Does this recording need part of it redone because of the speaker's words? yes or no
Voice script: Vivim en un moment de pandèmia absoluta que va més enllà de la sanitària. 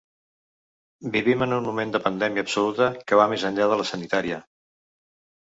no